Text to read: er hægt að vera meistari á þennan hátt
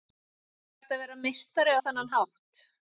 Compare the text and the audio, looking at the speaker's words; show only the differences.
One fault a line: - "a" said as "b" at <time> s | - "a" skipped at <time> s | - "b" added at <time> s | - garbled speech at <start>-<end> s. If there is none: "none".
none